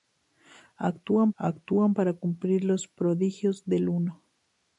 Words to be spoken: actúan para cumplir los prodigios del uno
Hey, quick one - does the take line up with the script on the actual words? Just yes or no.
no